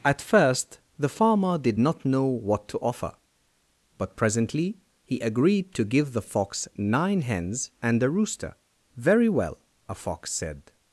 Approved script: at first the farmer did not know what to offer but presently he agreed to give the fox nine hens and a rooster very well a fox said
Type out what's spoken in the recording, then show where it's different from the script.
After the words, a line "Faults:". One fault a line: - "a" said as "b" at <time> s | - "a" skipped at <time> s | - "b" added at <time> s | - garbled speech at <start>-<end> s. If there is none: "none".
at first the farmer did not know what to offer but presently he agreed to give the fox nine hens and a rooster very well a fox said
Faults:
none